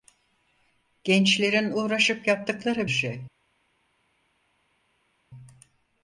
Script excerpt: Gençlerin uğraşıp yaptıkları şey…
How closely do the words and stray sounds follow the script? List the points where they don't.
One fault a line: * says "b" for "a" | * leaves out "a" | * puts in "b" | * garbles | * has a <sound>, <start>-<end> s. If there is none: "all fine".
all fine